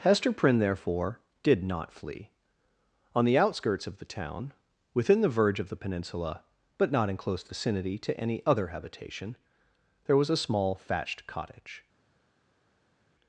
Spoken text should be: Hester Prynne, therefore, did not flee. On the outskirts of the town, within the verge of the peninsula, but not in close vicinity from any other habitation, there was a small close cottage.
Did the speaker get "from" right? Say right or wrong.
wrong